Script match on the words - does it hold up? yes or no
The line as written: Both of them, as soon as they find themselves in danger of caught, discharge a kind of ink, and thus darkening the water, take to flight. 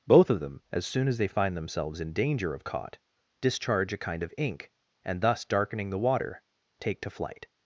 yes